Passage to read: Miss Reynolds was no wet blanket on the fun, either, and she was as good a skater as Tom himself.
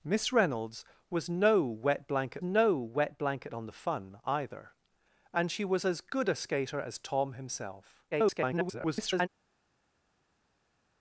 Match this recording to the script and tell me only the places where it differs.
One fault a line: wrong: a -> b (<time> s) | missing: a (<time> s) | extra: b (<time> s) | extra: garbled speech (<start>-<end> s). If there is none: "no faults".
extra: no wet blanket (2.4 s)
extra: garbled speech (8.1-9.3 s)